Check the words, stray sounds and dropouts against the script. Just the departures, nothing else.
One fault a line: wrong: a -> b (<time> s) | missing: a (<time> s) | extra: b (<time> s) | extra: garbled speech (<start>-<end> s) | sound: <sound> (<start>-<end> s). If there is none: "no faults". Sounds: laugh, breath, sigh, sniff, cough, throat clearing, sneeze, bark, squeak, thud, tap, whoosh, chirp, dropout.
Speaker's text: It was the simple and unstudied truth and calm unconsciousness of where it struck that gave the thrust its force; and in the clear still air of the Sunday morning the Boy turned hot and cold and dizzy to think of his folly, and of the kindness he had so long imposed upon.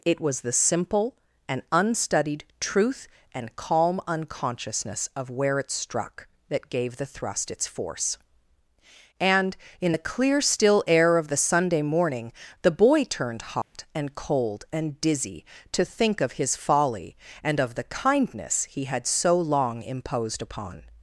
sound: dropout (13.6-13.7 s)